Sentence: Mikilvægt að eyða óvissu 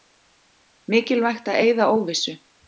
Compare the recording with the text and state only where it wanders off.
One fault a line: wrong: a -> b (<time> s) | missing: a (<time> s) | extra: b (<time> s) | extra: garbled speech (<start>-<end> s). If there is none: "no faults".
no faults